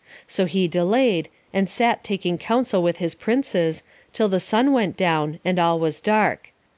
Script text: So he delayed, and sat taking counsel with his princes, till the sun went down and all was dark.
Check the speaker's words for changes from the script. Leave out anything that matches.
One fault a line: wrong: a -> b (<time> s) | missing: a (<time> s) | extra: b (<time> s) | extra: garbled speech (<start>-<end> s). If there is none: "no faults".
no faults